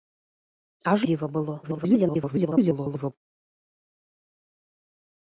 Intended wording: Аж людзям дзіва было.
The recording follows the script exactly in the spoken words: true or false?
false